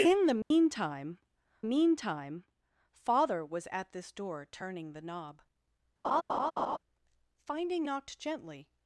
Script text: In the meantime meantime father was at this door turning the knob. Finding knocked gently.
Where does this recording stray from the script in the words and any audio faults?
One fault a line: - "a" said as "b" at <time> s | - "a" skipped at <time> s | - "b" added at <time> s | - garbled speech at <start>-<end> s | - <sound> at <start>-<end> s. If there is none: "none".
- dropout at 0.4-0.5 s
- laugh at 6.0-6.8 s